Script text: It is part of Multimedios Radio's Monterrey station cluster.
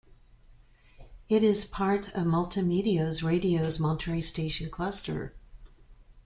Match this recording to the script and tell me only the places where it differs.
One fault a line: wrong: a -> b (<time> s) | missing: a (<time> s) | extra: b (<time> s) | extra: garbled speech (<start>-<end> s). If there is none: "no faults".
no faults